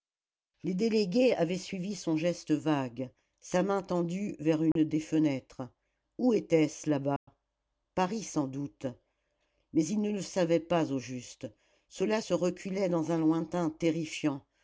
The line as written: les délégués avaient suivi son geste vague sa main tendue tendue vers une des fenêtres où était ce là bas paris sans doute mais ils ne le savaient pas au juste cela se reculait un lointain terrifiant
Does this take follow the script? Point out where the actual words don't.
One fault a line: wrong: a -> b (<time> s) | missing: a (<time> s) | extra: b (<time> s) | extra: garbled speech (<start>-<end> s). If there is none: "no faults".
missing: tendue (4.3 s)
extra: dans (12.9 s)